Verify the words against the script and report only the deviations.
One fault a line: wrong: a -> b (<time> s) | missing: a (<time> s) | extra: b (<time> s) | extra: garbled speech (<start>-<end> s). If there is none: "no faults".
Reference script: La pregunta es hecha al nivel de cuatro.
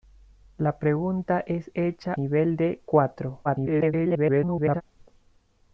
missing: al (2.1 s)
extra: garbled speech (3.4-4.8 s)